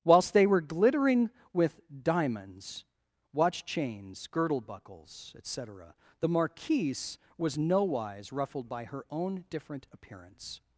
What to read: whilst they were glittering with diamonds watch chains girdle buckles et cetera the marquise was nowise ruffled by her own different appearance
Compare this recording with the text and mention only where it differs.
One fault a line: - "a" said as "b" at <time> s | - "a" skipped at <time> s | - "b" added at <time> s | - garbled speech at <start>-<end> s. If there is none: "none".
none